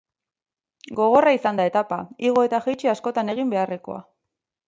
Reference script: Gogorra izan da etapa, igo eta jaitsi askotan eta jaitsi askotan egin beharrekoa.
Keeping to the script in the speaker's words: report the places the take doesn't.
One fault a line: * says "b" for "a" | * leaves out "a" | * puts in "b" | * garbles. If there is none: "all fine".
* leaves out "eta jaitsi askotan"